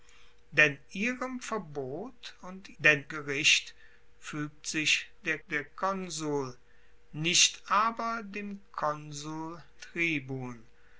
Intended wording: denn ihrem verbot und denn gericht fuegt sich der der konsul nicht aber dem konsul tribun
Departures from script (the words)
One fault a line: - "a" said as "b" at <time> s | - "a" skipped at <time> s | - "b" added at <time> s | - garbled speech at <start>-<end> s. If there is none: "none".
none